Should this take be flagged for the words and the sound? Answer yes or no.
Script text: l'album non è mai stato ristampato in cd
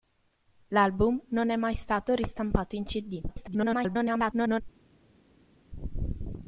yes